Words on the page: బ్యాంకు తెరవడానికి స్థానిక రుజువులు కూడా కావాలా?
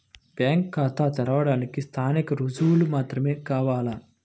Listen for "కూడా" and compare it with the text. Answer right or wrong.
wrong